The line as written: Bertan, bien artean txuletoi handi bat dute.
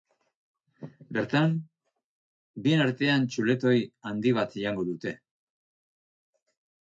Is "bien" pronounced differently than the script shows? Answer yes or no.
no